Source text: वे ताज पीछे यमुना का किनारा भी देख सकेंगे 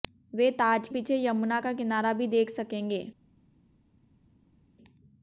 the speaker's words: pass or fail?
pass